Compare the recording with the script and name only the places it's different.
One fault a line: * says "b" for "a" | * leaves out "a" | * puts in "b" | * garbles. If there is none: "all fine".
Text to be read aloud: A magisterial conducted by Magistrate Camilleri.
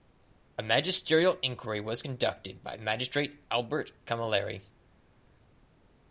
* puts in "inquiry was"
* puts in "Albert"